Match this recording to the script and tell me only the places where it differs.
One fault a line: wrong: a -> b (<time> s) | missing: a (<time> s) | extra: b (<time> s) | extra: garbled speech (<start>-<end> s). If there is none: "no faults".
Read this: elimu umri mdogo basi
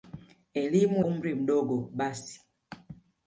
no faults